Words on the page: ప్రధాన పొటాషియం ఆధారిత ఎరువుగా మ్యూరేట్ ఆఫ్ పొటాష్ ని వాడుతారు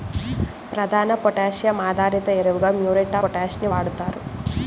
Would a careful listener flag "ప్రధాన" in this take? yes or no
no